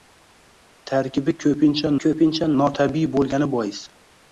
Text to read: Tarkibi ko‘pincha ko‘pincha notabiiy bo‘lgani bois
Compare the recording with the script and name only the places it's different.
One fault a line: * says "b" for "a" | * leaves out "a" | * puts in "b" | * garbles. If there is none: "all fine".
all fine